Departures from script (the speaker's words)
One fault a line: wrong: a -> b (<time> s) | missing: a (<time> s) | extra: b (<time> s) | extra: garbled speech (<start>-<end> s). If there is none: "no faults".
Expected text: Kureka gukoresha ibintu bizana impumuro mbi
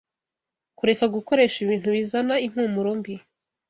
no faults